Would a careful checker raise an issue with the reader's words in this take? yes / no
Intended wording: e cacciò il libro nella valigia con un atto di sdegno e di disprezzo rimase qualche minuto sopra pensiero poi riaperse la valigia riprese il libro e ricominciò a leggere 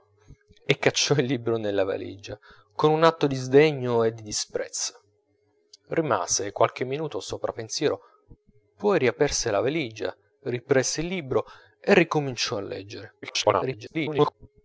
yes